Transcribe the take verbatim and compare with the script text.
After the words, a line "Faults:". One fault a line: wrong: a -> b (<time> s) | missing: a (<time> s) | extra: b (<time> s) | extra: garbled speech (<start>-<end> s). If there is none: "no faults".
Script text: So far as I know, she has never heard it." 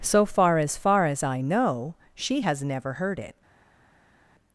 So far as far as I know, she has never heard it."
Faults:
extra: far as (0.8 s)